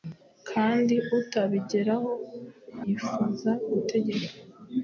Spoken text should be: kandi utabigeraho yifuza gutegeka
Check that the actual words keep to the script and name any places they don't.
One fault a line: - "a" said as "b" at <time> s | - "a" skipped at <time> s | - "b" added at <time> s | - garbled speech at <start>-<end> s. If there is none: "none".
none